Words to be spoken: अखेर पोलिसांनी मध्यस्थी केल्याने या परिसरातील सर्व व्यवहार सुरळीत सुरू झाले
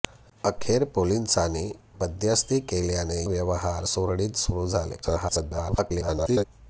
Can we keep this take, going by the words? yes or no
no